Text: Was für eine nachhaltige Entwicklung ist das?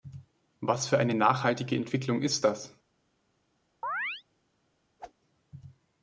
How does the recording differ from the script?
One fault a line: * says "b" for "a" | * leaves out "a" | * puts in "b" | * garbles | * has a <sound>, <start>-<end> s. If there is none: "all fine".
* has a chirp, 3.8-4.2 s
* has a whoosh, 5.0-5.1 s